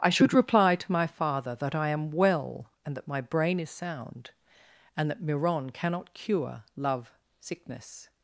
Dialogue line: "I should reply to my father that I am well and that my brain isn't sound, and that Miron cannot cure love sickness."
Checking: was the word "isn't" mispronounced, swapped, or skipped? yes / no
yes